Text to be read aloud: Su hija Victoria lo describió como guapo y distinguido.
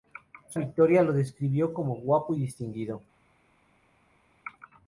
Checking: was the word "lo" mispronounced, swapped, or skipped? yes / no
no